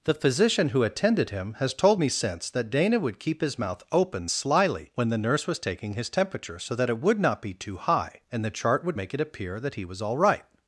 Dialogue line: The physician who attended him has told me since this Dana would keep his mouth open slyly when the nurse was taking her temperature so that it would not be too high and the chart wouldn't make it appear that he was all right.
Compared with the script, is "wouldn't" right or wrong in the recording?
wrong